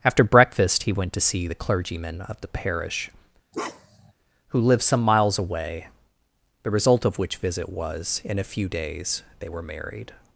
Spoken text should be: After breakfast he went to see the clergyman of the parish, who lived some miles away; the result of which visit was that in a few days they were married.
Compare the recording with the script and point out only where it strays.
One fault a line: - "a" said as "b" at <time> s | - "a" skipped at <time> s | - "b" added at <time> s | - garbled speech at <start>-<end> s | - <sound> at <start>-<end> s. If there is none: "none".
- bark at 3.5-4.1 s
- "that" skipped at 8.2 s